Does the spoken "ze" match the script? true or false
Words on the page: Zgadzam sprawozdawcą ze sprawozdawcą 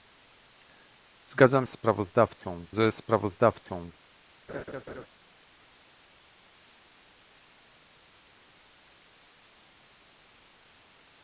true